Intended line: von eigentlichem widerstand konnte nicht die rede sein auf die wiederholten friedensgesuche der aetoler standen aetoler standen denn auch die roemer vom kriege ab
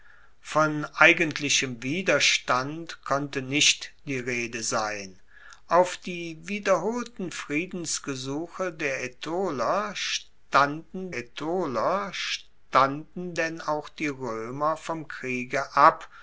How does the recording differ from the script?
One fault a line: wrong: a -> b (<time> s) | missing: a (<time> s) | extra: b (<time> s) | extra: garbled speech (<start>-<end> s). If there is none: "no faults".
no faults